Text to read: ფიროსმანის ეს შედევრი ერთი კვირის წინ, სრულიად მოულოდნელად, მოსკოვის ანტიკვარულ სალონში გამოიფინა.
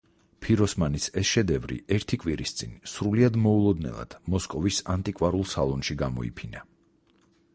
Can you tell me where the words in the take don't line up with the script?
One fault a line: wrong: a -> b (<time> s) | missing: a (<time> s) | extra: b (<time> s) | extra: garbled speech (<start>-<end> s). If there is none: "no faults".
no faults